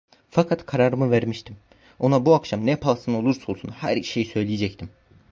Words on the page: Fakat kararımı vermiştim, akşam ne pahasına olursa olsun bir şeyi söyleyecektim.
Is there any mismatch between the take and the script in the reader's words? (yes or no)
yes